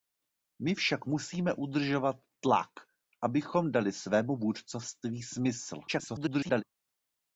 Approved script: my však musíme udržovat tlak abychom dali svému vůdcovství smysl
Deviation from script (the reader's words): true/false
true